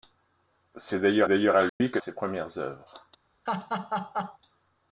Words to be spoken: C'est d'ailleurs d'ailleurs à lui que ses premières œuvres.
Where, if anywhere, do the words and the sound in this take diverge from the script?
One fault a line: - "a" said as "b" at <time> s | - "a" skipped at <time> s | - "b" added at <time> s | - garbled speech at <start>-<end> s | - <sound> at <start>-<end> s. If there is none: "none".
- dropout at 1.7-1.8 s
- laugh at 3.5-4.4 s